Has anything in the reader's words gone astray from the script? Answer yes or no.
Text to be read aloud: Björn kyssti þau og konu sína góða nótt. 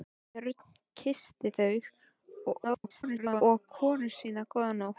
yes